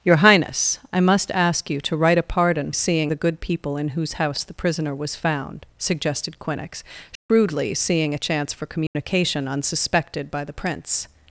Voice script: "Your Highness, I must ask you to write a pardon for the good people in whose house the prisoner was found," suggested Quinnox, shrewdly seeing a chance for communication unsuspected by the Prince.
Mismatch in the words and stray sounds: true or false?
true